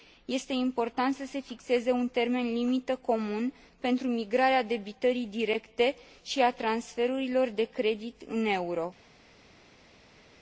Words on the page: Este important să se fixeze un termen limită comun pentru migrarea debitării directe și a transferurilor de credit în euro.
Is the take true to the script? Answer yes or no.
yes